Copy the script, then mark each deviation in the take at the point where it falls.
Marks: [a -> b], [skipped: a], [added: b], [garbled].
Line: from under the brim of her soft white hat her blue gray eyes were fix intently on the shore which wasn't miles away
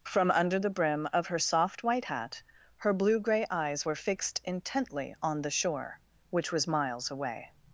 from under the brim of her soft white hat her blue gray eyes were [fix -> fixed] intently on the shore which [wasn't -> was] miles away